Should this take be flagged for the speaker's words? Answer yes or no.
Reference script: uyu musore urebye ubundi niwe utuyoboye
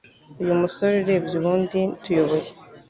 yes